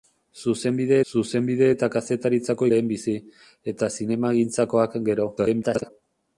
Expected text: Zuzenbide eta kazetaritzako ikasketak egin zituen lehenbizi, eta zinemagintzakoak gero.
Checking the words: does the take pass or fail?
fail